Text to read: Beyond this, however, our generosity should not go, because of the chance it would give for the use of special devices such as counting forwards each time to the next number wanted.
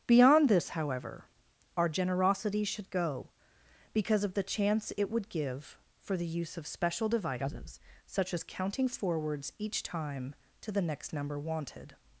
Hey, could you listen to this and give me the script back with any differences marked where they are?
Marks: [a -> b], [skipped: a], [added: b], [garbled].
Beyond this, however, our generosity should [skipped: not] go, because of the chance it would give for the use of special devices such as counting forwards each time to the next number wanted.